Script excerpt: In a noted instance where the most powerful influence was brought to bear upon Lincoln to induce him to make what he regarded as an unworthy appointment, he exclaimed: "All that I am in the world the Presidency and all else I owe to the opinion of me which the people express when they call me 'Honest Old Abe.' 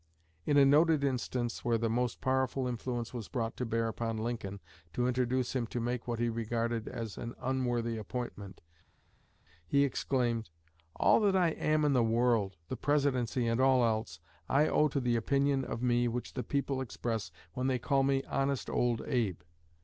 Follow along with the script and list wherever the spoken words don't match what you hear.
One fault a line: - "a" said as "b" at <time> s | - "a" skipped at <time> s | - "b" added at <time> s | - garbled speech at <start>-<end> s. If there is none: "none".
none